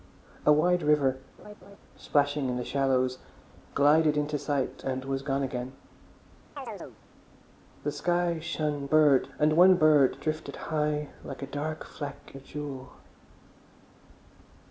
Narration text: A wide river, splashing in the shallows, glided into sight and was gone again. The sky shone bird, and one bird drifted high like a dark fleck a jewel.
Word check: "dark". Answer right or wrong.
right